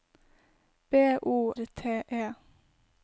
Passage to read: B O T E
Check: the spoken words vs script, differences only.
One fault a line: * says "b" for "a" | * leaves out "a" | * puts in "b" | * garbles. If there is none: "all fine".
all fine